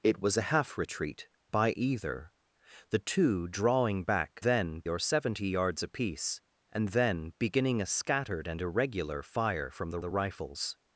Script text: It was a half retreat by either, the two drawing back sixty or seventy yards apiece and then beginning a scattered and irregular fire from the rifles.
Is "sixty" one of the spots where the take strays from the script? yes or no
yes